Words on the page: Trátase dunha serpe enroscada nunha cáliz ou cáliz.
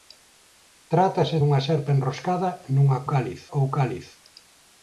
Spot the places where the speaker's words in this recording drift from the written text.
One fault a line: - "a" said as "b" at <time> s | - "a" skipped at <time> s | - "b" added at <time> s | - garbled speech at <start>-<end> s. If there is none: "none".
none